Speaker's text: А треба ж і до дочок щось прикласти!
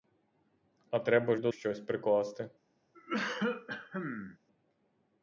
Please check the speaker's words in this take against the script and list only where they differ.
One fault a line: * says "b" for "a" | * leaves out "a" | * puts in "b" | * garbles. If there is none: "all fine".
* leaves out "ж"
* leaves out "дочок"